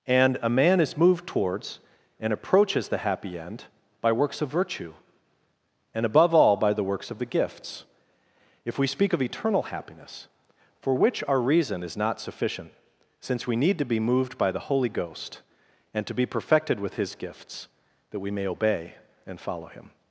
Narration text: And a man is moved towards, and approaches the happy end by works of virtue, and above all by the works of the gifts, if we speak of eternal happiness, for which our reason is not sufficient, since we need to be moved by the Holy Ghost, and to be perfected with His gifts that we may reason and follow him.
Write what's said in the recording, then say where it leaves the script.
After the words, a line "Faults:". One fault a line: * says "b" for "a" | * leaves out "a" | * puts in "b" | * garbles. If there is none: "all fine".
And a man is moved towards, and approaches the happy end by works of virtue, and above all by the works of the gifts, if we speak of eternal happiness, for which our reason is not sufficient, since we need to be moved by the Holy Ghost, and to be perfected with His gifts that we may obey and follow him.
Faults:
* says "obey" for "reason"